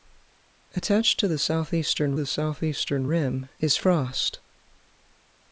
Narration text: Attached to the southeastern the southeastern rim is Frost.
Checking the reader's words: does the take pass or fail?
pass